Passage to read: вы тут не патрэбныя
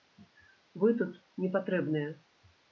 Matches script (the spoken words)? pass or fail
pass